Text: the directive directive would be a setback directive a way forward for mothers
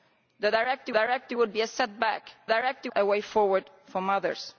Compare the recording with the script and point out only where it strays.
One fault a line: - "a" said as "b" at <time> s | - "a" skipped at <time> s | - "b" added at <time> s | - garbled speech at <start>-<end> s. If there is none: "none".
none